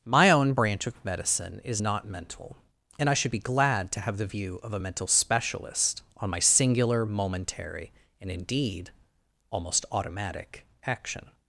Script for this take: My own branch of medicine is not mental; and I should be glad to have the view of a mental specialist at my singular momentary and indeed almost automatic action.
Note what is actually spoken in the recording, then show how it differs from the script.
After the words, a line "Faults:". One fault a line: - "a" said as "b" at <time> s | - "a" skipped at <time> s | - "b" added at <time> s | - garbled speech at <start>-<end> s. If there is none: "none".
My own branch of medicine is not mental; and I should be glad to have the view of a mental specialist on my singular momentary and indeed almost automatic action.
Faults:
- "at" said as "on" at 6.2 s